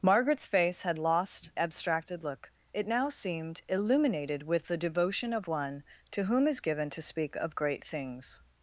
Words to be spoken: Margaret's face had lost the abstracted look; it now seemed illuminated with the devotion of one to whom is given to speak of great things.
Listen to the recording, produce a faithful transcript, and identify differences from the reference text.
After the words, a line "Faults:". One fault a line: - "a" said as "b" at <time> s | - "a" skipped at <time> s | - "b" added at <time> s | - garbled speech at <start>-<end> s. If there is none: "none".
Margaret's face had lost abstracted look; it now seemed illuminated with the devotion of one to whom is given to speak of great things.
Faults:
- "the" skipped at 1.5 s